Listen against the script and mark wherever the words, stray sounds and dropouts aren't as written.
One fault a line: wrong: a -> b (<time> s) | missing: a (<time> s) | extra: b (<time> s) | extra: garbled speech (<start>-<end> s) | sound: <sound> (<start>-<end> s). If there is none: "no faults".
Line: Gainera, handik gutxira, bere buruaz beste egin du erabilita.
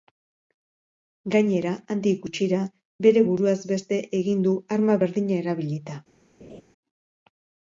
extra: arma berdina (4.8 s)
sound: laugh (6.4-6.6 s)